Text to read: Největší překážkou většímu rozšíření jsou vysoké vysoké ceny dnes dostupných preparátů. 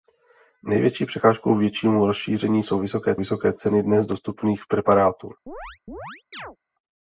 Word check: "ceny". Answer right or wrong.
right